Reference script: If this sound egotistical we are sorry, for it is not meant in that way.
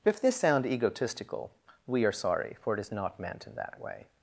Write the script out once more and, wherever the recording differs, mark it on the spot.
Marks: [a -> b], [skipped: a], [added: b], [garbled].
If this sound egotistical we are sorry, for it is not meant in that way.